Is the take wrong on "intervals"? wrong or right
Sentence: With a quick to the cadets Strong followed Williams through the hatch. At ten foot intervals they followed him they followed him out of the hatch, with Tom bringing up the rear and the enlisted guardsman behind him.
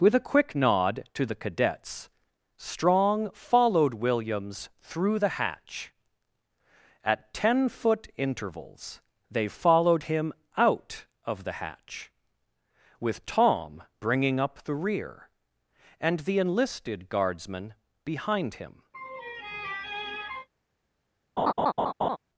right